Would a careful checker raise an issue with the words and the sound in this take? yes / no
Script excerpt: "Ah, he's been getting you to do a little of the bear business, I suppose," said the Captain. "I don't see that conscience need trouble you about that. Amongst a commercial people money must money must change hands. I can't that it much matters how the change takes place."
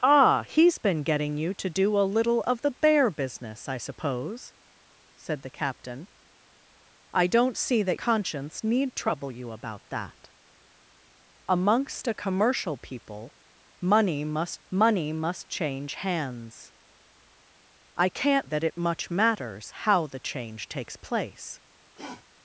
yes